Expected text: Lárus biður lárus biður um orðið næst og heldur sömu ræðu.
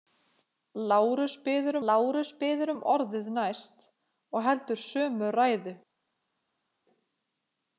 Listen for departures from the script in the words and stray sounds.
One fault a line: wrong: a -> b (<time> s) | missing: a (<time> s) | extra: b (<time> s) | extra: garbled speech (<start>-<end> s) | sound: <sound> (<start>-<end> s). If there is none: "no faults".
no faults